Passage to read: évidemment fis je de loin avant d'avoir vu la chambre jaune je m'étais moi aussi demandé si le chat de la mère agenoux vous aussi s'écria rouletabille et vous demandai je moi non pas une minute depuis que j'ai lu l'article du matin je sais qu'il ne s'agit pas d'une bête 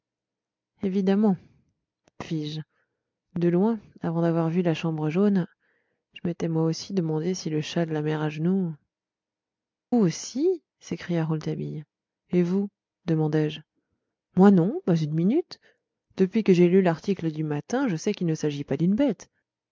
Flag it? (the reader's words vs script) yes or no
yes